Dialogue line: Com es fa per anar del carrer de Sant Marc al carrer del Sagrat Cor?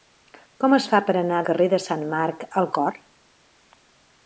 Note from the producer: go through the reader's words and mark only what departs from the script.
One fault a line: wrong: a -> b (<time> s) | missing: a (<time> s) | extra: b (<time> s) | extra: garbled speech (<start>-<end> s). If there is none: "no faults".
missing: del (1.4 s)
missing: carrer del Sagrat (2.7 s)